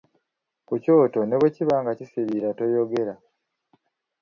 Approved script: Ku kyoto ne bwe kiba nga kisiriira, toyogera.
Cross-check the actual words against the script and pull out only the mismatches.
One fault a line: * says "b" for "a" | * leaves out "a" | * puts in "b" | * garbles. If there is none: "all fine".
all fine